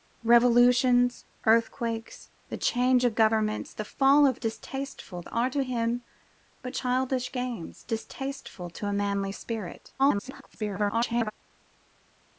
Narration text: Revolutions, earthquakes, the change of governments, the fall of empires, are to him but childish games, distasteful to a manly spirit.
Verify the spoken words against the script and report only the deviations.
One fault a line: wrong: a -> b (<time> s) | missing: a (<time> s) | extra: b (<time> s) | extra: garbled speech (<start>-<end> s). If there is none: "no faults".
wrong: empires -> distasteful (4.4 s)
extra: garbled speech (10.0-11.3 s)